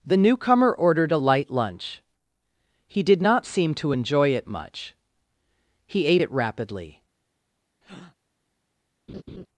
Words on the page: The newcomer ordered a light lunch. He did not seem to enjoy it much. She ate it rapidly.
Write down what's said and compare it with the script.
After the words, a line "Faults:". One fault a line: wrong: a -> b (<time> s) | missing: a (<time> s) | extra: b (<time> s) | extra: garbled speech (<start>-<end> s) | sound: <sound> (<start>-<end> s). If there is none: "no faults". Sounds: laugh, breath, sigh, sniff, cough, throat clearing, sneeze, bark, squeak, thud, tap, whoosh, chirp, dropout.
The newcomer ordered a light lunch. He did not seem to enjoy it much. He ate it rapidly.
Faults:
wrong: She -> He (5.9 s)
sound: breath (7.8-8.2 s)
sound: laugh (9.1-9.5 s)